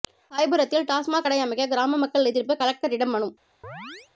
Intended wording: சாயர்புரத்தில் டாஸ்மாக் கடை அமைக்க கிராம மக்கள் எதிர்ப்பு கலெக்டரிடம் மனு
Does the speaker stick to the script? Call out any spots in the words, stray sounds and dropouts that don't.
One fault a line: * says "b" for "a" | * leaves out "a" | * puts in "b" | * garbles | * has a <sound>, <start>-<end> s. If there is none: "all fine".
* has a chirp, 3.6-4.1 s